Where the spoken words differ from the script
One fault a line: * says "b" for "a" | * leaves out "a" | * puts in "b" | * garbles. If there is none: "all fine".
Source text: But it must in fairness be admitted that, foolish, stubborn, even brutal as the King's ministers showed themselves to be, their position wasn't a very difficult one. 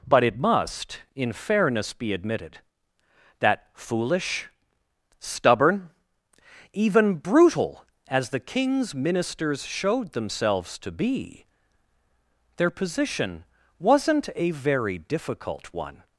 all fine